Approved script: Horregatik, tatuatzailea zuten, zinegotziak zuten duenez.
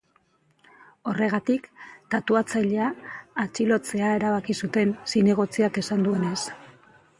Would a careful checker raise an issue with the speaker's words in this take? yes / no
yes